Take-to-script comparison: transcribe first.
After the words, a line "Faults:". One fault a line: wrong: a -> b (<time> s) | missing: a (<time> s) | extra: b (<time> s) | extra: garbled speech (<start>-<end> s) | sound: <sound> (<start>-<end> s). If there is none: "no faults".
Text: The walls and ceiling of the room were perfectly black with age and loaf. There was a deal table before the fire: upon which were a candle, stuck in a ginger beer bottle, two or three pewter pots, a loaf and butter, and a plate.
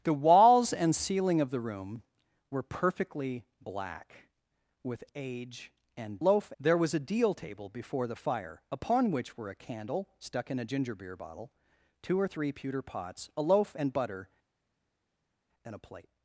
The walls and ceiling of the room were perfectly black with age and loaf. There was a deal table before the fire: upon which were a candle, stuck in a ginger beer bottle, two or three pewter pots, a loaf and butter, and a plate.
Faults:
no faults